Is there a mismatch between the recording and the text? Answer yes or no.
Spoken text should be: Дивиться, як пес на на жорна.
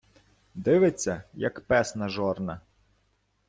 yes